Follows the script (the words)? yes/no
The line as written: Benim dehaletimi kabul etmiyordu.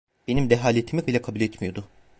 no